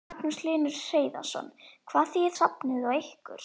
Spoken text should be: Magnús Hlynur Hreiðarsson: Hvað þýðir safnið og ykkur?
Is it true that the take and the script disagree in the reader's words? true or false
false